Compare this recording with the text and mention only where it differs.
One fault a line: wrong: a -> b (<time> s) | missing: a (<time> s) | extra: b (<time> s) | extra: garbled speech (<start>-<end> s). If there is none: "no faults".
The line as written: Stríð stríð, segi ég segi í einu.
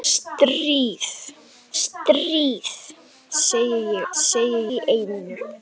no faults